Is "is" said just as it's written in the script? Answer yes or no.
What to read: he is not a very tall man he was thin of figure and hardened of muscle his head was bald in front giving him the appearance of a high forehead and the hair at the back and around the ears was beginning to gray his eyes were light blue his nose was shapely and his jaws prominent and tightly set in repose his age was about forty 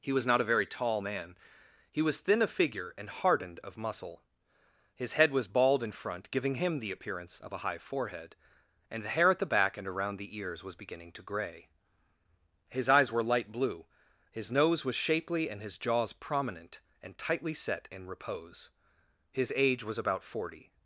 no